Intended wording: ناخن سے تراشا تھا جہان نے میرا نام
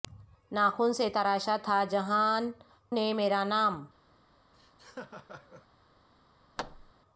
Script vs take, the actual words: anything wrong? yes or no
no